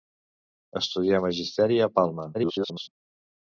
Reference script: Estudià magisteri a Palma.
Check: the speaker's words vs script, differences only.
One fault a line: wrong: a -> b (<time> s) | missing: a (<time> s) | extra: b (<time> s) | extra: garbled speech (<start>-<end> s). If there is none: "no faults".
extra: garbled speech (2.3-2.9 s)